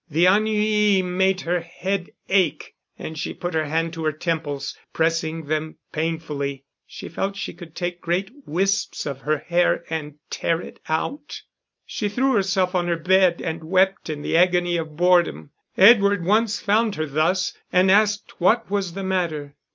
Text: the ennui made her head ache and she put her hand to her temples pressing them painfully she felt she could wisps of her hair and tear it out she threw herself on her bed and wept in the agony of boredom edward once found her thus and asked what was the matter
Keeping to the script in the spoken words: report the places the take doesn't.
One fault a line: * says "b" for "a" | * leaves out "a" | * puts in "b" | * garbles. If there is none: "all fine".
* puts in "take great"